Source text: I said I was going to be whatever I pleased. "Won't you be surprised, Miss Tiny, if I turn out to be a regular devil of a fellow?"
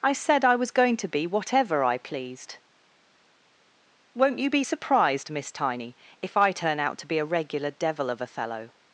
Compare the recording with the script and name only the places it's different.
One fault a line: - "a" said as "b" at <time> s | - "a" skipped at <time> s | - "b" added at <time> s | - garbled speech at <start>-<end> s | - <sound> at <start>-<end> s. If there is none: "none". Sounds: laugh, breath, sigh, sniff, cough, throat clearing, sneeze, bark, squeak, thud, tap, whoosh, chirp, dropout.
none